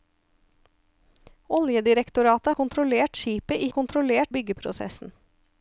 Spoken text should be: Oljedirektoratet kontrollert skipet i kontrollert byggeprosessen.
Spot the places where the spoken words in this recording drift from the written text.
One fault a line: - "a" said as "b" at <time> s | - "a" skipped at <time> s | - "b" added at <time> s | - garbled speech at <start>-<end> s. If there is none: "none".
none